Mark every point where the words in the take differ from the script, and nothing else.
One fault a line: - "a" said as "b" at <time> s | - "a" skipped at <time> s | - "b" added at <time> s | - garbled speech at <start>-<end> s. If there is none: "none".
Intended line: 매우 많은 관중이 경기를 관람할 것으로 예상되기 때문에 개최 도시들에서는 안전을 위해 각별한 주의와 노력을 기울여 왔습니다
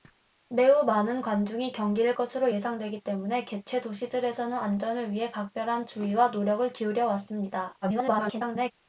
- "관람할" skipped at 2.1 s
- garbled speech at 7.8-8.7 s